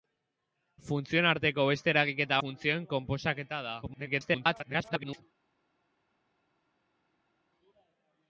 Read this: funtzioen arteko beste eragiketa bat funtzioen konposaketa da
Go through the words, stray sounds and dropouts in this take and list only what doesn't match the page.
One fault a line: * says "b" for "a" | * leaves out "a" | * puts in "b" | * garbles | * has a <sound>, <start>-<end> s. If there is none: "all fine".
* leaves out "bat"
* garbles